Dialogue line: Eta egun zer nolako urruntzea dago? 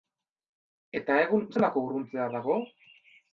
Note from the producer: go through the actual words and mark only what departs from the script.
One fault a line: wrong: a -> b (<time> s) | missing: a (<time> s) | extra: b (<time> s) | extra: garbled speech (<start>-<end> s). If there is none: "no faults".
missing: zer (1.4 s)